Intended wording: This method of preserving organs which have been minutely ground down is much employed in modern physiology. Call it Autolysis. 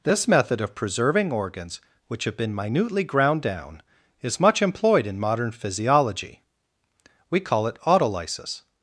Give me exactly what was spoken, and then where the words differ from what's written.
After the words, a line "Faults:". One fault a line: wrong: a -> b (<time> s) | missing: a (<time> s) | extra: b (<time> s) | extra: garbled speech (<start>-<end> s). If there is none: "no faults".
This method of preserving organs which have been minutely ground down is much employed in modern physiology. We call it Autolysis.
Faults:
extra: We (7.3 s)